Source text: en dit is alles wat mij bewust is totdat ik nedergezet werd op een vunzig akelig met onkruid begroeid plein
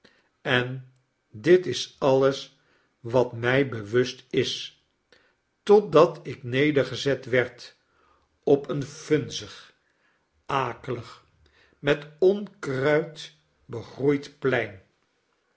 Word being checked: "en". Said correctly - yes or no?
yes